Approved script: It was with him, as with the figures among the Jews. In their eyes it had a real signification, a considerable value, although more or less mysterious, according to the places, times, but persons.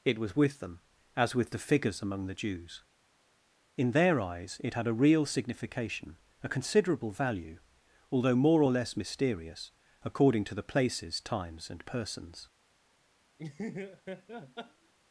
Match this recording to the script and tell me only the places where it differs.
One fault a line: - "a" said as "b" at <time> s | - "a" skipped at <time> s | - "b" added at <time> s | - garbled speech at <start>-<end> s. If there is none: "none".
- "him" said as "them" at 0.6 s
- "but" said as "and" at 11.7 s